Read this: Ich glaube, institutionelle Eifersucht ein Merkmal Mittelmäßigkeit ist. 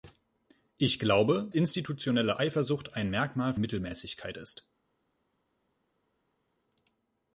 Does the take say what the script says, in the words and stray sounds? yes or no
yes